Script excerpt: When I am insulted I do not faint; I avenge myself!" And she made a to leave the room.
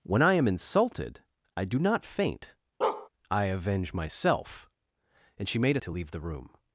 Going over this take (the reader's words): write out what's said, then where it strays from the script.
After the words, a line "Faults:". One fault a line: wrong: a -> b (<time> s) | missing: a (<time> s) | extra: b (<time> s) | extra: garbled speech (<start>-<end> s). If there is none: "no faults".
When I am insulted I do not faint; I avenge myself!" And she made a to leave the room.
Faults:
no faults